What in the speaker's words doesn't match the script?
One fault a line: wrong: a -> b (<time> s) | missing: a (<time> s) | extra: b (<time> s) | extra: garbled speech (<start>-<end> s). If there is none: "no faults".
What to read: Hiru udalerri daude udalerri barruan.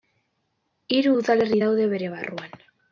wrong: udalerri -> bere (2.0 s)